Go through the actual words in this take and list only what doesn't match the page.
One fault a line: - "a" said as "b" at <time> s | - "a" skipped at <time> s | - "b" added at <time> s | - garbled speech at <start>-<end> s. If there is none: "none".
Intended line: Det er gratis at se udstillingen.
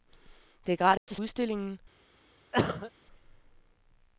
- "se" skipped at 1.2 s